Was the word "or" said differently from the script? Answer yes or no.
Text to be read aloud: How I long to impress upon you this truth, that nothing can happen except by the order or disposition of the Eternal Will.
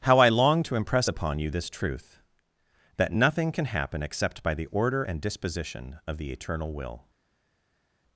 yes